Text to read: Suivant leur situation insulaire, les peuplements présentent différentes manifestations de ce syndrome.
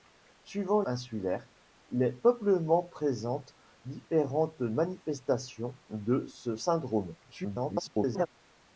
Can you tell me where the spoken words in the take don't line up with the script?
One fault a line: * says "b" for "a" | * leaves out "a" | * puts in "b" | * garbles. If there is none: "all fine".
* leaves out "leur situation"
* garbles